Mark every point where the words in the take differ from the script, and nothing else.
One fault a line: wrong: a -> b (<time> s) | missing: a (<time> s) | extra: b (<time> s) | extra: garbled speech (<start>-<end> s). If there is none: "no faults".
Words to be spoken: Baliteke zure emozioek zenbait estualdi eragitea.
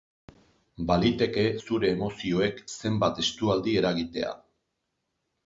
no faults